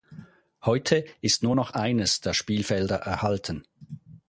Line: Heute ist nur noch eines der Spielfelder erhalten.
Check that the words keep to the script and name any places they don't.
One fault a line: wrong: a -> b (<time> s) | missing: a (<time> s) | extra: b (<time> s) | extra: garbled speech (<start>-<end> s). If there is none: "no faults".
no faults